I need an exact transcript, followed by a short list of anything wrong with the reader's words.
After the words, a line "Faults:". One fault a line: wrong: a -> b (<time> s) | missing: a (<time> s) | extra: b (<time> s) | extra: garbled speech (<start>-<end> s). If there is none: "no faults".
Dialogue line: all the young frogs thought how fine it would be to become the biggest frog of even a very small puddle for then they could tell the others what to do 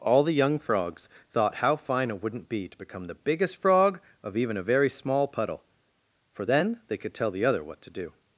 all the young frogs thought how fine it wouldn't be to become the biggest frog of even a very small puddle for then they could tell the other what to do
Faults:
wrong: would -> wouldn't (2.2 s)
wrong: others -> other (7.4 s)